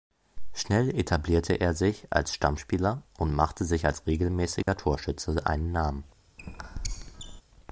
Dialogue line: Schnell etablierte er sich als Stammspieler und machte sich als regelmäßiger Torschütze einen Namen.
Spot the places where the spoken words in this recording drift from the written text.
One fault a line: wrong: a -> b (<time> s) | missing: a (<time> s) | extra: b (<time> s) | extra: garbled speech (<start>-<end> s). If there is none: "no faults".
no faults